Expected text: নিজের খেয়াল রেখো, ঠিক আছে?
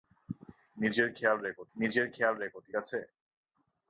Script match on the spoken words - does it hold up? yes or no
no